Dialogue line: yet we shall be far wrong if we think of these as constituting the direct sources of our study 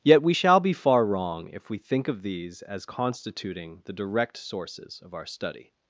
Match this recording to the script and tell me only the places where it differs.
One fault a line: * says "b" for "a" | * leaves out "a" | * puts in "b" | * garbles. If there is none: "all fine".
all fine